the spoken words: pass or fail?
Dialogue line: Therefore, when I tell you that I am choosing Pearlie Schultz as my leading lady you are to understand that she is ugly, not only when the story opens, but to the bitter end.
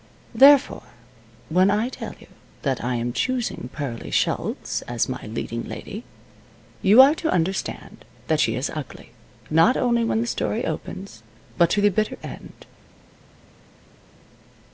pass